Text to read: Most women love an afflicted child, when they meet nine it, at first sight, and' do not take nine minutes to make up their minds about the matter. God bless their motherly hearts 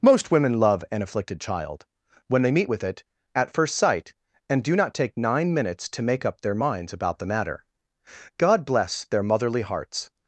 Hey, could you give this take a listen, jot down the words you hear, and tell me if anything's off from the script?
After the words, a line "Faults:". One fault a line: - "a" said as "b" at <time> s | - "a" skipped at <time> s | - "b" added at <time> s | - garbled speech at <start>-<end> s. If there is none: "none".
Most women love an afflicted child, when they meet with it, at first sight, and' do not take nine minutes to make up their minds about the matter. God bless their motherly hearts
Faults:
- "nine" said as "with" at 2.7 s